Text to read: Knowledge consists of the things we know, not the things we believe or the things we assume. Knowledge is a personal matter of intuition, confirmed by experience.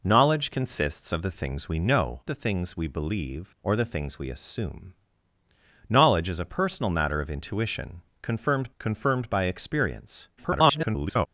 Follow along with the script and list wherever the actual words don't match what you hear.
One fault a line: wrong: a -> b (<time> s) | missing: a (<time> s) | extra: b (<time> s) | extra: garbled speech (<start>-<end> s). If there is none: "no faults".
missing: not (2.2 s)
extra: confirmed (8.8 s)
extra: garbled speech (10.4-11.3 s)